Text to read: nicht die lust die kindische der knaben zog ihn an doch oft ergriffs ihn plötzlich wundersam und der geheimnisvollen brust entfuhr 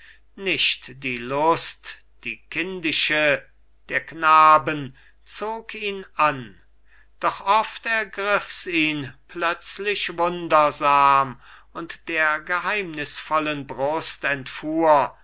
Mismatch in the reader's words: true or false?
false